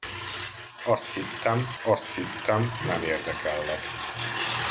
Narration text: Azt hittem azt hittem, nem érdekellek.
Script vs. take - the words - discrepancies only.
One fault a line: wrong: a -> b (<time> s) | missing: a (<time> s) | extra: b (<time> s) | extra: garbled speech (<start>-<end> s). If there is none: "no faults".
no faults